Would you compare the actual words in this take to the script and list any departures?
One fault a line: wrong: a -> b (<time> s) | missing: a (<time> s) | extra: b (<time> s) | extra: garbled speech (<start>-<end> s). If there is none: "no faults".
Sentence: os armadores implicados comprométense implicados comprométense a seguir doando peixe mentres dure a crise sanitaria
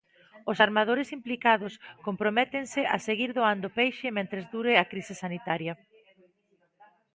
missing: implicados comprométense (2.8 s)